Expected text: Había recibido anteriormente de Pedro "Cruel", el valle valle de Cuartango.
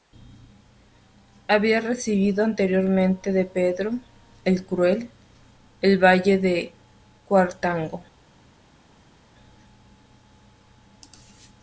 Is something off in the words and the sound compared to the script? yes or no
yes